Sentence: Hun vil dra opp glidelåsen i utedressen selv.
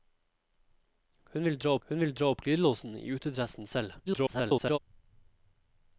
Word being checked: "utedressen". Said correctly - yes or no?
yes